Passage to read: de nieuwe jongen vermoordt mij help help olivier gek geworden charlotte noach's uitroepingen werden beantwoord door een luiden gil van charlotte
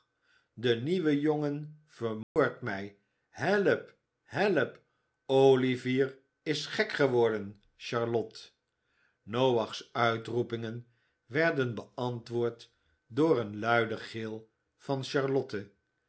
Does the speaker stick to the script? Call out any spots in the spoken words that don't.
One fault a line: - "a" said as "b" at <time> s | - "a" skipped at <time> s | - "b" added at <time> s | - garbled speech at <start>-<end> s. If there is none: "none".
- "is" added at 6.4 s